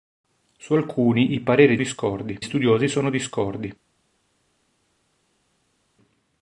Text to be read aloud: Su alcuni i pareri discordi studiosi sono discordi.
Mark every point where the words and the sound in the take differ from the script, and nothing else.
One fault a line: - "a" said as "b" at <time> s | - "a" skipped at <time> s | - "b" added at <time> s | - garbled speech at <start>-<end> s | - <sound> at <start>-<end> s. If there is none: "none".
none